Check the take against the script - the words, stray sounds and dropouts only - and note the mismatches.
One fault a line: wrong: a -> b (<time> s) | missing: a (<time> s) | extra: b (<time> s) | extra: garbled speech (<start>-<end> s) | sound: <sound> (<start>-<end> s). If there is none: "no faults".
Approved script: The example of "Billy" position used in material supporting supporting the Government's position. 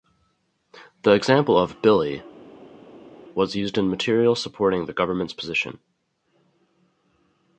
wrong: position -> was (3.3 s)
missing: supporting (4.9 s)